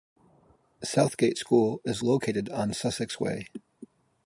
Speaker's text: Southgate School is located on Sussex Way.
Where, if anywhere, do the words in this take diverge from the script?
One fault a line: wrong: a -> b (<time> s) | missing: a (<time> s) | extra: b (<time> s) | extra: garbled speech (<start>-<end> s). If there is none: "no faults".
no faults